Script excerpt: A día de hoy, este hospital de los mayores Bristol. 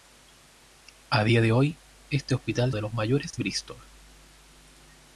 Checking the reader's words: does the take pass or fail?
pass